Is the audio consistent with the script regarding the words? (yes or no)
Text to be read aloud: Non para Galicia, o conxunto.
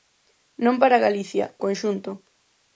yes